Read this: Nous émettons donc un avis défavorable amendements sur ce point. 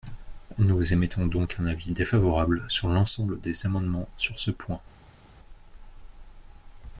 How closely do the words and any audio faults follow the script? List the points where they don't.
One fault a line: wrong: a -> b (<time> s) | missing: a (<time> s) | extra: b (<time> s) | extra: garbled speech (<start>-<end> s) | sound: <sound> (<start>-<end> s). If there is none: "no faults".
extra: sur l'ensemble des (2.7 s)